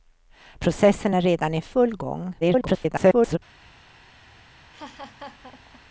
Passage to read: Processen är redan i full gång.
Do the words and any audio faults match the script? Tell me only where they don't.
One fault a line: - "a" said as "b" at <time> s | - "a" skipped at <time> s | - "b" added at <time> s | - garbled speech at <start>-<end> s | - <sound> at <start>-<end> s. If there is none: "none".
- garbled speech at 2.4-3.4 s
- laugh at 4.7-5.8 s